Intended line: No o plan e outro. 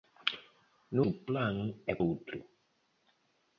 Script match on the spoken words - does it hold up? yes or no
yes